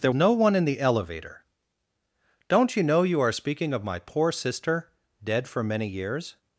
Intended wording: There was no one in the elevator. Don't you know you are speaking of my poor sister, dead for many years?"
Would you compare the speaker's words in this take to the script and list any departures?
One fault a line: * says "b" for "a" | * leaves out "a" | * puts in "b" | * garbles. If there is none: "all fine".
* leaves out "was"